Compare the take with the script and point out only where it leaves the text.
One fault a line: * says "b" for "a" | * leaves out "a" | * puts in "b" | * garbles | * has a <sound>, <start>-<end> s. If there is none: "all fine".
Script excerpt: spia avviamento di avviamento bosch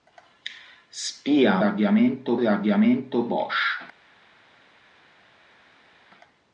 all fine